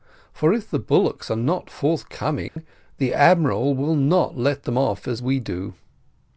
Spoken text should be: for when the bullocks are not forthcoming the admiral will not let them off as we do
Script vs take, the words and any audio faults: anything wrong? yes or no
yes